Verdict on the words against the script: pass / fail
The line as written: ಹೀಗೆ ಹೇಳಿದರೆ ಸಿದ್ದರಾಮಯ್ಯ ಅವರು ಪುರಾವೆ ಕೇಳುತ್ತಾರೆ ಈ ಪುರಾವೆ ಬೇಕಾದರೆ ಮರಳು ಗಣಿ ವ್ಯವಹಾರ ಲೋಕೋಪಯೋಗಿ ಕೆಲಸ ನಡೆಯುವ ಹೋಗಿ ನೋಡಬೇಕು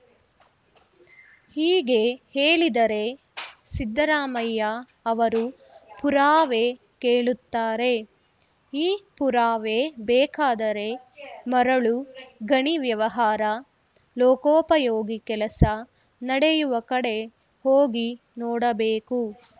fail